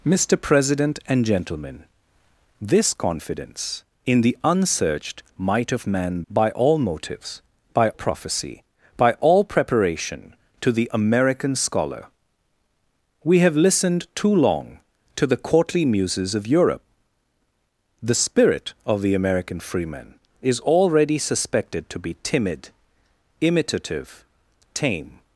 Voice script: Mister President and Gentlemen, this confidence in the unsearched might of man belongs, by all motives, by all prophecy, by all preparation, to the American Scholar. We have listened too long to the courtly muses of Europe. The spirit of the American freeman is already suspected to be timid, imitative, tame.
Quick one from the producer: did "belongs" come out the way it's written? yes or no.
no